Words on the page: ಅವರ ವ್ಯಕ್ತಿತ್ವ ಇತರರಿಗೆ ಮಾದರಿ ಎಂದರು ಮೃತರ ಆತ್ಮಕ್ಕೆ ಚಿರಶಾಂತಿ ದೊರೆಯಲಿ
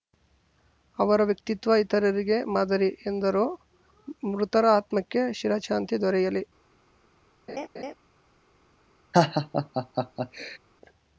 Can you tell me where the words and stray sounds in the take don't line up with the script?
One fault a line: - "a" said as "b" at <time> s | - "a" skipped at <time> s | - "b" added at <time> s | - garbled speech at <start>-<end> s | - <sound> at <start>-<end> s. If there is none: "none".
- laugh at 7.5-7.9 s
- laugh at 9.1-10.6 s